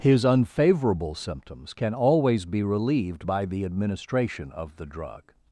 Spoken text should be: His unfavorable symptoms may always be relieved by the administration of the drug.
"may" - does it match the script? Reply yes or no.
no